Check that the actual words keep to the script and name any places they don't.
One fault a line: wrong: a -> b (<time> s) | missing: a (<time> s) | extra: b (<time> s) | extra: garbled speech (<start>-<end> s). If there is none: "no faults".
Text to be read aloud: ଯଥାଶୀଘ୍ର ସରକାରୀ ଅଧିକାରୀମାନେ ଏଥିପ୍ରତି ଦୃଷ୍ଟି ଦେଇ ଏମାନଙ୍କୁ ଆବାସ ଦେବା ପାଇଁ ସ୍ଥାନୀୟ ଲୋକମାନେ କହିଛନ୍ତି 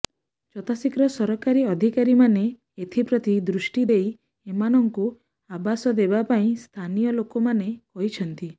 no faults